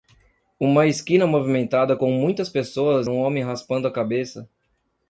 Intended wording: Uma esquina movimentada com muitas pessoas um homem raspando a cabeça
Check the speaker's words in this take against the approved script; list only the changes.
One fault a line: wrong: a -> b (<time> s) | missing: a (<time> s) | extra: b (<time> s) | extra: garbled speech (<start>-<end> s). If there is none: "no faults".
no faults